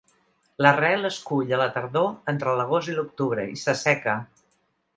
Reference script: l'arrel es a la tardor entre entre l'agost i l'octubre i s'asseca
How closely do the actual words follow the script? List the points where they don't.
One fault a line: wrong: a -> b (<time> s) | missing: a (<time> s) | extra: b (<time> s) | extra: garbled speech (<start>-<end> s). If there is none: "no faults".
extra: cull (1.3 s)
missing: entre (2.5 s)